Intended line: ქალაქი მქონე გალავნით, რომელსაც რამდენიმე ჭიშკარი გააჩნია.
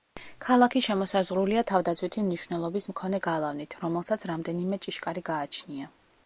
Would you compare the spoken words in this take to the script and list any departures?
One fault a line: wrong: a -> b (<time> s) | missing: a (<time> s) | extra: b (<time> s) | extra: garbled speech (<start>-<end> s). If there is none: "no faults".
extra: შემოსაზღვრულია თავდაცვითი მნიშვნელობის (0.8 s)